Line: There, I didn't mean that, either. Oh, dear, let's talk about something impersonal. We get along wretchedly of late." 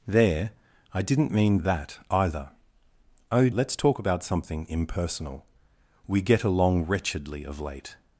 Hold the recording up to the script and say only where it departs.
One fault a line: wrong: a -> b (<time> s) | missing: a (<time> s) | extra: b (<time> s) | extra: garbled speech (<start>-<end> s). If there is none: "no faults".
missing: dear (3.5 s)